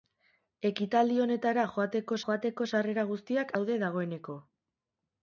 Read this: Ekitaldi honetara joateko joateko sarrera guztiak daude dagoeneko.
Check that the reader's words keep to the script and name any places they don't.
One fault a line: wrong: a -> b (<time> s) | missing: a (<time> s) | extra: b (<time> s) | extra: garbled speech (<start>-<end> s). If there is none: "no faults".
no faults